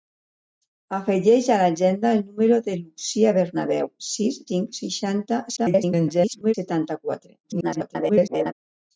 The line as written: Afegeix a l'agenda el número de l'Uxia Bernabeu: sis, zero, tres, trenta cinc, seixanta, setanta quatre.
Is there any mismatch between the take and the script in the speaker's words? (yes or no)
yes